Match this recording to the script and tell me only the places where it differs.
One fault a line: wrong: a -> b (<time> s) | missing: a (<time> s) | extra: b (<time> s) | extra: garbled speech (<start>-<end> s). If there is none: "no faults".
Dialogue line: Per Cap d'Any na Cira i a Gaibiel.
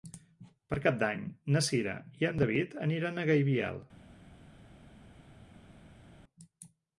extra: en David aniran (2.3 s)